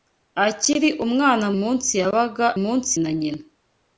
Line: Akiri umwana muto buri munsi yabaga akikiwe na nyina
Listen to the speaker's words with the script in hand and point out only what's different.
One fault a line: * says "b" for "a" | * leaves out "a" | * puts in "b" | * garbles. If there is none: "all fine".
* leaves out "muto buri"
* says "munsi" for "akikiwe"